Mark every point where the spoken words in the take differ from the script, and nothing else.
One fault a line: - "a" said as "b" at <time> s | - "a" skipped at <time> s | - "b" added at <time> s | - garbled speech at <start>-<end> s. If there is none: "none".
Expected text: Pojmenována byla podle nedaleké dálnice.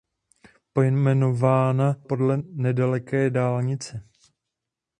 - "byla" skipped at 2.0 s